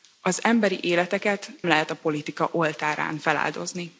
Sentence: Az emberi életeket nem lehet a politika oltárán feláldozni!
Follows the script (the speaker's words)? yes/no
no